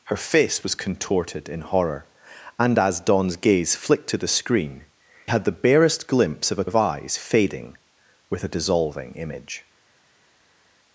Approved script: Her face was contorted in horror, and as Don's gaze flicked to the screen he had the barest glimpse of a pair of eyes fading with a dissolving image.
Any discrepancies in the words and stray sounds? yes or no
yes